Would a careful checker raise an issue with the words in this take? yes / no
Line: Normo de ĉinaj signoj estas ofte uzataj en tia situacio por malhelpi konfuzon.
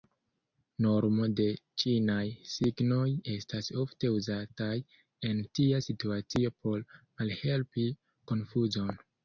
no